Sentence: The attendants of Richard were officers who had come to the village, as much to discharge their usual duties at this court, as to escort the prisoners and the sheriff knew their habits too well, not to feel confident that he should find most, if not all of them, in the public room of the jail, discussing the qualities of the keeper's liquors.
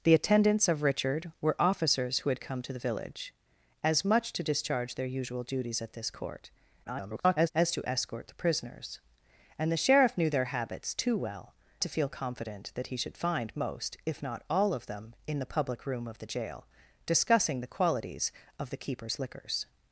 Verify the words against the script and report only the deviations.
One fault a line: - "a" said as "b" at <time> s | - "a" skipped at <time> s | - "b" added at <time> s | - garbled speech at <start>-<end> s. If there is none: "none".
- garbled speech at 6.8-7.5 s
- "not" skipped at 11.5 s